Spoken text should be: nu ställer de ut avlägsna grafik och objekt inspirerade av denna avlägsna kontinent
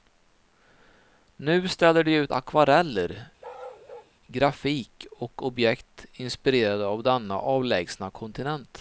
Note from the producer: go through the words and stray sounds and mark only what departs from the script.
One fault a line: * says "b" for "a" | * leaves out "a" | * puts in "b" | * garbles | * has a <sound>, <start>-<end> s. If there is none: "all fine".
* says "akvareller" for "avlägsna"
* has a bark, 3.4-4.1 s